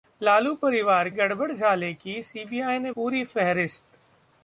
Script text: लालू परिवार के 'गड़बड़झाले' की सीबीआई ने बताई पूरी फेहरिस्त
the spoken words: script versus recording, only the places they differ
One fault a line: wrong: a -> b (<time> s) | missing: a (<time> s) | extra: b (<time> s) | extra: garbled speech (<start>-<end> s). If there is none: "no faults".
missing: के (1.1 s)
missing: बताई (2.9 s)